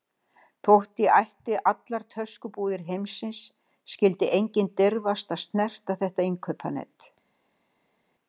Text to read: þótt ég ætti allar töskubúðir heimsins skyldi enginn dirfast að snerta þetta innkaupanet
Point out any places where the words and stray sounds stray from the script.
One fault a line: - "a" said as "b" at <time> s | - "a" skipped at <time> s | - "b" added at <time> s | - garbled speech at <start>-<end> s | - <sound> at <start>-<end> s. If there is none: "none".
none